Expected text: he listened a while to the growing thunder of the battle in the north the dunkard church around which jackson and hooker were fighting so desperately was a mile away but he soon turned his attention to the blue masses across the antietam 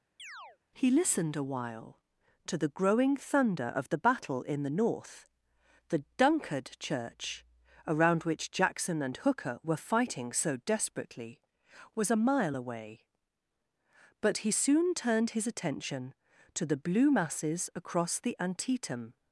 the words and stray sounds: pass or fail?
fail